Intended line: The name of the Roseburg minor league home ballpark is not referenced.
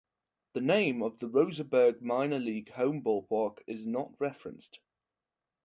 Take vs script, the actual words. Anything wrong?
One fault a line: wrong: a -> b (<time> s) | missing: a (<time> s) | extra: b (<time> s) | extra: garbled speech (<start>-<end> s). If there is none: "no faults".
no faults